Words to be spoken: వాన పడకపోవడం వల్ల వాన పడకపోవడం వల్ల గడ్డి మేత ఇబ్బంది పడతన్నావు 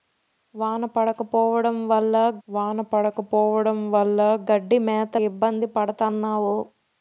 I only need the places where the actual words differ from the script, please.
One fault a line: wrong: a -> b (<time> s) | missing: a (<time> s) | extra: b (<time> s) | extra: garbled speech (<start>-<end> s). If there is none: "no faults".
no faults